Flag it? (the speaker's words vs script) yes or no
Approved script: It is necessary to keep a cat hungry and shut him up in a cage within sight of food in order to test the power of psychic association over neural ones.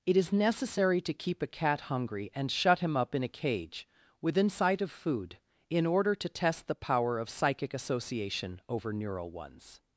no